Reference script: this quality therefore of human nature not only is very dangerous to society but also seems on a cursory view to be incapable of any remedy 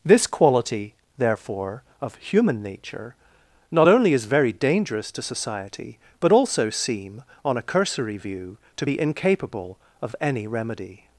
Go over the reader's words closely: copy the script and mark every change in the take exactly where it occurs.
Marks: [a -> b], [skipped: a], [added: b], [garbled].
this quality therefore of human nature not only is very dangerous to society but also [seems -> seem] on a cursory view to be incapable of any remedy